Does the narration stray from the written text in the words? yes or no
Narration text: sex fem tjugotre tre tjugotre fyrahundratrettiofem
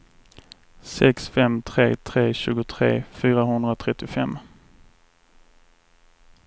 yes